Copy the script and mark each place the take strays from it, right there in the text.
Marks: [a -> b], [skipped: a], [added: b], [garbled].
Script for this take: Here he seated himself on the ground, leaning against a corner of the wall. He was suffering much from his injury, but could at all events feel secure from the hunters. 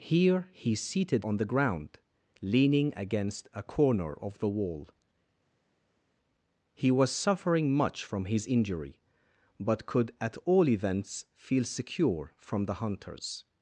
Here he seated [skipped: himself] on the ground, leaning against a corner of the wall. He was suffering much from his injury, but could at all events feel secure from the hunters.